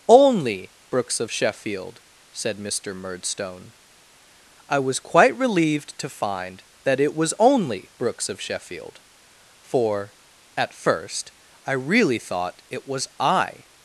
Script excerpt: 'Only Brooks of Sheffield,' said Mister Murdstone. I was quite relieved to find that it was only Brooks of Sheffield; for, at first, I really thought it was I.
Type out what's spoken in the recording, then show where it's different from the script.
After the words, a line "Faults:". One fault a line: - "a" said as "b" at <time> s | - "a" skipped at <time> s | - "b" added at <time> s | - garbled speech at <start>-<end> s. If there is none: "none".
'Only Brooks of Sheffield,' said Mister Murdstone. I was quite relieved to find that it was only Brooks of Sheffield; for, at first, I really thought it was I.
Faults:
none